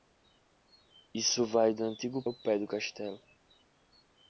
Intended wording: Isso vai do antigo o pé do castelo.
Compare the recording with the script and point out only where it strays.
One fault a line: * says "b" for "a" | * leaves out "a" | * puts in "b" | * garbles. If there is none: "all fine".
all fine